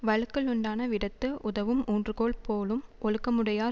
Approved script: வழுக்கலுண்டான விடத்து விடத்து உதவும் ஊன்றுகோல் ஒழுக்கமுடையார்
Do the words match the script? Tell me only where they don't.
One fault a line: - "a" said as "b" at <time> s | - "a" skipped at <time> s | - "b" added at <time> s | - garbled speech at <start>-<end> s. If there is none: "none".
- "விடத்து" skipped at 1.3 s
- "போலும்" added at 2.4 s